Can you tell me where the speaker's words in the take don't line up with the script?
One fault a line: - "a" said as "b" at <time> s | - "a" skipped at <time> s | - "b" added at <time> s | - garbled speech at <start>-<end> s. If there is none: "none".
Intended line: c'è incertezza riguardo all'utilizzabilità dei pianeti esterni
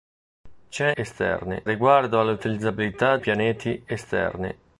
- "incertezza" said as "esterni" at 0.9 s
- "dei" skipped at 3.2 s